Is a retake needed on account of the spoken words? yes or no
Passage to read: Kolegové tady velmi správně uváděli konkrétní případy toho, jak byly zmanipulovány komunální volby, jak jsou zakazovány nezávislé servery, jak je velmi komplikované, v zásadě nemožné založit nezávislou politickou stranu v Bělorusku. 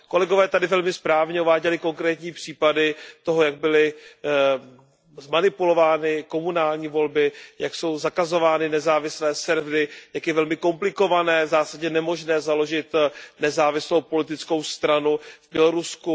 no